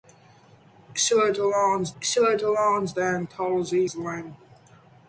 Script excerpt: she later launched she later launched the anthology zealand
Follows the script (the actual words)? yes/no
yes